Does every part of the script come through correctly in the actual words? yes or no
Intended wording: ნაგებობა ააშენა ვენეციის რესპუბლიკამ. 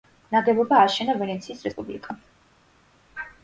yes